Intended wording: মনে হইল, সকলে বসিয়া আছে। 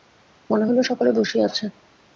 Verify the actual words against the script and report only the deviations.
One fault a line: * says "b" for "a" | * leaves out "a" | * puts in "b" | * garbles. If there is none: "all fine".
all fine